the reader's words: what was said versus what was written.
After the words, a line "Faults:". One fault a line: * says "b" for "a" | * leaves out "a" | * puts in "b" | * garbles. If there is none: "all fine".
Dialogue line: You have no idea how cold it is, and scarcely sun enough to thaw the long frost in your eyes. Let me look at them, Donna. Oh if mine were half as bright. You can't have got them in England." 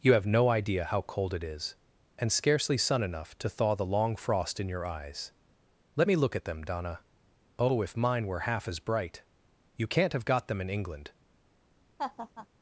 You have no idea how cold it is, and scarcely sun enough to thaw the long frost in your eyes. Let me look at them, Donna. Oh if mine were half as bright. You can't have got them in England."
Faults:
all fine